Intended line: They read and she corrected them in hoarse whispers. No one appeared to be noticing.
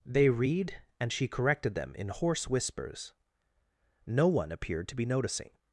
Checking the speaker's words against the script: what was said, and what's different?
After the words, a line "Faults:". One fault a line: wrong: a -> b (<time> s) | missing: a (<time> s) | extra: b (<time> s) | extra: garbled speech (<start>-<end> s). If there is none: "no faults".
They read and she corrected them in hoarse whispers. No one appeared to be noticing.
Faults:
no faults